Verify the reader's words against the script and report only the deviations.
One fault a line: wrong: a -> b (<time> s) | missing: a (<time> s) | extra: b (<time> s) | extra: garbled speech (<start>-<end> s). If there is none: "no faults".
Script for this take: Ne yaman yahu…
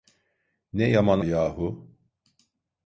no faults